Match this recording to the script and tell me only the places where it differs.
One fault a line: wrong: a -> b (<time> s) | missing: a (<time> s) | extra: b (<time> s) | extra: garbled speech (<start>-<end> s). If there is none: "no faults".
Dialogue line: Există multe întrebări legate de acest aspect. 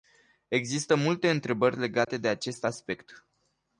no faults